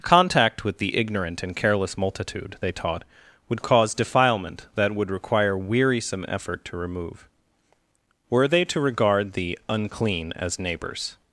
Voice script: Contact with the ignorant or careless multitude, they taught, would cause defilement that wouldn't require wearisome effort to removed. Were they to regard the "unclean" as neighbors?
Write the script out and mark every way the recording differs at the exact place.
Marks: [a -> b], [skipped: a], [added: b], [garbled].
Contact with the ignorant [or -> and] careless multitude, they taught, would cause defilement that [wouldn't -> would] require wearisome effort to [removed. -> remove] Were they to regard the "unclean" as neighbors?